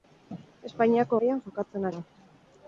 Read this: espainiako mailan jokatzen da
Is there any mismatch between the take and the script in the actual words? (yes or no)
no